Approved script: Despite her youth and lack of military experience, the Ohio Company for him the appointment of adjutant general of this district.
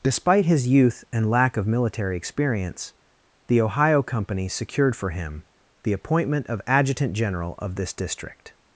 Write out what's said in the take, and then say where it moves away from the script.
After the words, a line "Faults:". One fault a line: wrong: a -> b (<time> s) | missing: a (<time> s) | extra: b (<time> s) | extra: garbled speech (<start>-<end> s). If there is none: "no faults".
Despite his youth and lack of military experience, the Ohio Company secured for him the appointment of adjutant general of this district.
Faults:
wrong: her -> his (0.5 s)
extra: secured (4.5 s)